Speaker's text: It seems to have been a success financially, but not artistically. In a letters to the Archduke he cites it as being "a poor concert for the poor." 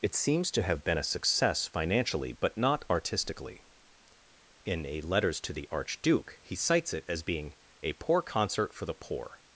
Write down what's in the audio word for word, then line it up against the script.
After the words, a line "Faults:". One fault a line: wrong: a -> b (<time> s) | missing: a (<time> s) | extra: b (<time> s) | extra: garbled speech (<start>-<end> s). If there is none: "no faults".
It seems to have been a success financially, but not artistically. In a letters to the Archduke he cites it as being "a poor concert for the poor."
Faults:
no faults